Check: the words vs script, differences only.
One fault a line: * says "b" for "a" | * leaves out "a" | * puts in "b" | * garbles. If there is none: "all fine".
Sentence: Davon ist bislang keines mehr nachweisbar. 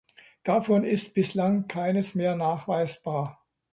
all fine